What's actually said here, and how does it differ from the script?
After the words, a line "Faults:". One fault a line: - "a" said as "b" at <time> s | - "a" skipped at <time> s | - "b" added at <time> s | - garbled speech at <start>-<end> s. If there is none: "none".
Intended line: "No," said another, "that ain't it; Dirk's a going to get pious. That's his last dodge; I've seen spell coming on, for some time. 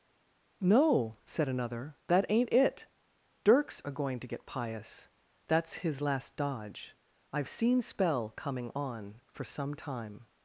"No," said another, "that ain't it; Dirk's a going to get pious. That's his last dodge; I've seen spell coming on, for some time.
Faults:
none